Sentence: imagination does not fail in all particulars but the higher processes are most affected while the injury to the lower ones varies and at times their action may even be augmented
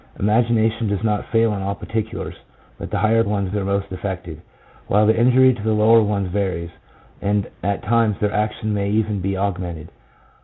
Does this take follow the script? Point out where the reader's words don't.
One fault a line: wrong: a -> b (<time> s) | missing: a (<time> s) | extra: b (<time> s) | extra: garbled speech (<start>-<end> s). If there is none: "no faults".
wrong: processes -> ones (3.2 s)